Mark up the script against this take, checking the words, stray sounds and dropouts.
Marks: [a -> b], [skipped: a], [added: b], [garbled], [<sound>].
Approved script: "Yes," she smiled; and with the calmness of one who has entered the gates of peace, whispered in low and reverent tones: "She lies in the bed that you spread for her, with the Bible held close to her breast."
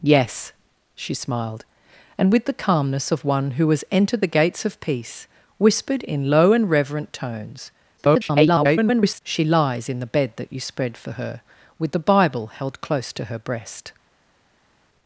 "Yes," she smiled; and with the calmness of one who has entered the gates of peace, whispered in low and reverent tones: [garbled] "She lies in the bed that you spread for her, with the Bible held close to her breast."